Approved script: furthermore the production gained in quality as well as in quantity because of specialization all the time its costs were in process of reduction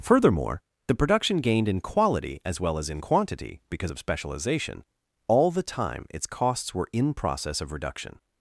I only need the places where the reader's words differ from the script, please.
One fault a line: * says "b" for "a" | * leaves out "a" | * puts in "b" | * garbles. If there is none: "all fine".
all fine